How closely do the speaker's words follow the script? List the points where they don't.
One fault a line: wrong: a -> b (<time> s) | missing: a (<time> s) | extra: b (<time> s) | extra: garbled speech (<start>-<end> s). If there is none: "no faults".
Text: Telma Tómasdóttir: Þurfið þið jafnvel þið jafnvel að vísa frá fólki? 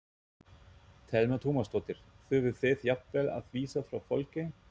missing: þið jafnvel (3.3 s)